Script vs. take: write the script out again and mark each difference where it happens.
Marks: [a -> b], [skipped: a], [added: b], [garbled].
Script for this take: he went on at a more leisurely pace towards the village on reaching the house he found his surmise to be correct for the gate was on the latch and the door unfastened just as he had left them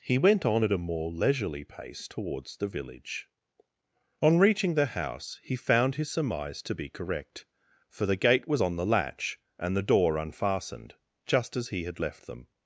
he went on at a more leisurely pace towards the village on reaching the house he found his surmise to be correct for the gate was on the latch and the door unfastened just as he had left them